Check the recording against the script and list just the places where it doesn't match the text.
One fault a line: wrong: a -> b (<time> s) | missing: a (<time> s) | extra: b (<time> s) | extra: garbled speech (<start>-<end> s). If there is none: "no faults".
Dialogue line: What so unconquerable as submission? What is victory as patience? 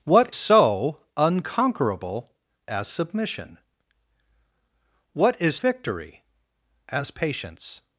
no faults